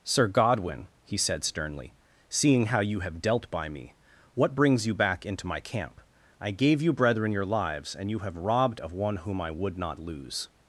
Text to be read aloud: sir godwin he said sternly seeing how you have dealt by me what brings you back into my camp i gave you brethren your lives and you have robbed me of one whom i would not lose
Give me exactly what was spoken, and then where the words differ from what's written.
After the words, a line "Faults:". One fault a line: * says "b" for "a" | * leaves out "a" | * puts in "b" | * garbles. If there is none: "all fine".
sir godwin he said sternly seeing how you have dealt by me what brings you back into my camp i gave you brethren your lives and you have robbed of one whom i would not lose
Faults:
* leaves out "me"